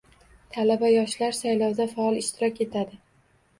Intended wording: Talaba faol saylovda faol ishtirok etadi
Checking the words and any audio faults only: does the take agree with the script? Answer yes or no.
no